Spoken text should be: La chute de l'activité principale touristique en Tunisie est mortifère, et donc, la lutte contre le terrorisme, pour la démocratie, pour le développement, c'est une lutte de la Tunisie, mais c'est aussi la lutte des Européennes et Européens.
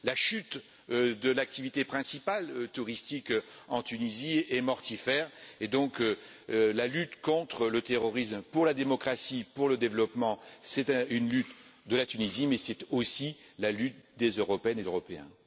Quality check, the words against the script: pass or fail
pass